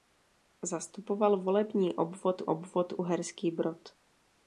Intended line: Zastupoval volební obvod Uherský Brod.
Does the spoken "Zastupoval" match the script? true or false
true